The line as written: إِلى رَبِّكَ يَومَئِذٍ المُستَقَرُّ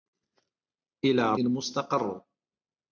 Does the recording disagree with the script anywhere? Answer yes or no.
yes